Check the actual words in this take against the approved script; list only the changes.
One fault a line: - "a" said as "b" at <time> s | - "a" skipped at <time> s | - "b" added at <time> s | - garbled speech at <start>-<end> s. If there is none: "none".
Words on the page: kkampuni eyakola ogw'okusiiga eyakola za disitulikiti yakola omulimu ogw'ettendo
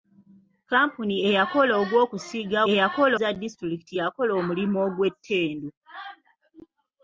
none